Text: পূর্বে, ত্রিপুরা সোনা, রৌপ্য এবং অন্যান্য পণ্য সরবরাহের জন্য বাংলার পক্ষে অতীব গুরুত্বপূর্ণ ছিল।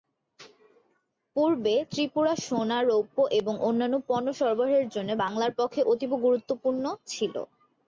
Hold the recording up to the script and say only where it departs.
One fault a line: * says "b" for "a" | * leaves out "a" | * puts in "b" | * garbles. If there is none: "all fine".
all fine